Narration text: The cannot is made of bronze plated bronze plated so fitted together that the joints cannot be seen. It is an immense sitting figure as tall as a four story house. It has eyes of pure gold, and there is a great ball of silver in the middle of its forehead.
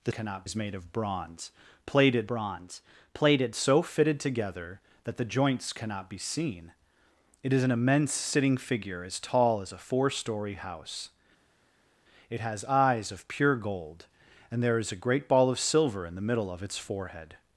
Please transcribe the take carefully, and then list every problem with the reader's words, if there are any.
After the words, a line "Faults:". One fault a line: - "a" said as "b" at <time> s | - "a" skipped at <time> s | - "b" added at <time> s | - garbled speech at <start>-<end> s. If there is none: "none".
The cannot is made of bronze plated bronze plated so fitted together that the joints cannot be seen. It is an immense sitting figure as tall as a four story house. It has eyes of pure gold, and there is a great ball of silver in the middle of its forehead.
Faults:
none